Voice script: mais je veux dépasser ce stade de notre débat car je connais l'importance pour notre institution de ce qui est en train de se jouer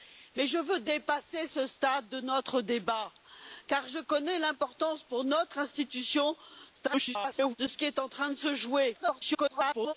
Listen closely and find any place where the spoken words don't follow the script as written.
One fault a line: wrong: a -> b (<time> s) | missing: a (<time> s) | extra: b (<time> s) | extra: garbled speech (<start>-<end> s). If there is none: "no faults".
extra: garbled speech (6.7-7.6 s)
extra: garbled speech (8.9-9.9 s)